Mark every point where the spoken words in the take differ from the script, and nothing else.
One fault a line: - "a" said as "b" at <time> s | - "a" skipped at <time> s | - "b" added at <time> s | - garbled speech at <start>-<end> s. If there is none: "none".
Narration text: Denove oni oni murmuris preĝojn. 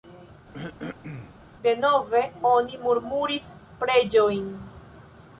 - "oni" skipped at 2.8 s